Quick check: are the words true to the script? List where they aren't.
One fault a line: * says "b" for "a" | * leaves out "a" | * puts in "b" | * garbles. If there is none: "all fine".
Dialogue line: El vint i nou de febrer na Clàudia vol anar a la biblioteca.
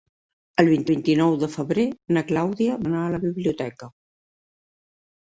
* puts in "vint"
* leaves out "vol"